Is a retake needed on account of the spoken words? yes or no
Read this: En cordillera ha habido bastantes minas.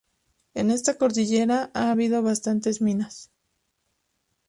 yes